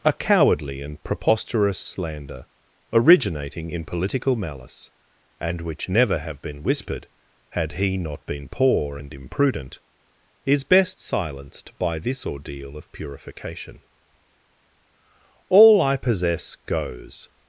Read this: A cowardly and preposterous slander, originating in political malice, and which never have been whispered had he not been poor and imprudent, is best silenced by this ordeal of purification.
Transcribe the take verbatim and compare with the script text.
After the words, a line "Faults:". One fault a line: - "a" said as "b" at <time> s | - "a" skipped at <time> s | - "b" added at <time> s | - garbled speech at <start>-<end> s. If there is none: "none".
A cowardly and preposterous slander, originating in political malice, and which never have been whispered had he not been poor and imprudent, is best silenced by this ordeal of purification. All I possess goes
Faults:
- "All I possess goes" added at 15.5 s